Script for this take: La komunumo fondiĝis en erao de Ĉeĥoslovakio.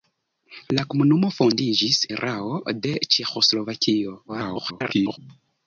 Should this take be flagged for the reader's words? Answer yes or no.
yes